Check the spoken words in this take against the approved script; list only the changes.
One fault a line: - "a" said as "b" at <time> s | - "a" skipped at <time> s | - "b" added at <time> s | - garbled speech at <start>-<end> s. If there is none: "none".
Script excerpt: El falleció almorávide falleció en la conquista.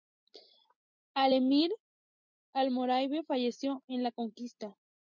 - "falleció" said as "emir" at 1.3 s